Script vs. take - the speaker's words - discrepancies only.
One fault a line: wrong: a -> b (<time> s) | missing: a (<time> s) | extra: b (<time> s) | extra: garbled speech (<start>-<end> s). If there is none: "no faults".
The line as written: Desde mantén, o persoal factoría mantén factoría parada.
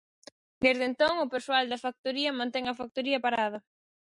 wrong: mantén -> entón (0.9 s)
extra: da (1.7 s)
extra: a (2.7 s)